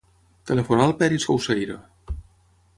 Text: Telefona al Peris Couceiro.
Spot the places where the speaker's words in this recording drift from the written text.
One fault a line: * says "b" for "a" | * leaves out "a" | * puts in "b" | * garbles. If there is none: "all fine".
all fine